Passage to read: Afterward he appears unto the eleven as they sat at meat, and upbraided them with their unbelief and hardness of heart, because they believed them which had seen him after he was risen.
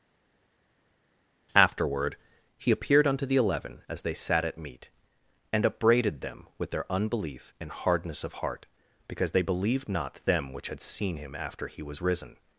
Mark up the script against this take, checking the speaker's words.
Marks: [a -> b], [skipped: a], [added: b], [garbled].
Afterward he [appears -> appeared] unto the eleven as they sat at meat, and upbraided them with their unbelief and hardness of heart, because they believed [added: not] them which had seen him after he was risen.